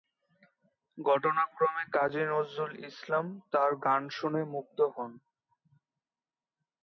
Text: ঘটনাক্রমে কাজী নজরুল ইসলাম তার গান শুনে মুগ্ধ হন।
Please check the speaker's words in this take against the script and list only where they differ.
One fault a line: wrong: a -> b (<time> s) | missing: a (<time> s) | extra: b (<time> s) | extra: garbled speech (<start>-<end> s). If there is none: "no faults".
no faults